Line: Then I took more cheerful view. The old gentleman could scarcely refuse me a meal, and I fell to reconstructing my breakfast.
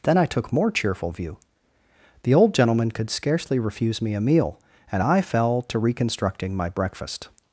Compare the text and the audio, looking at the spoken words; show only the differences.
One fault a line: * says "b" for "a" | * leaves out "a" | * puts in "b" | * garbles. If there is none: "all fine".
all fine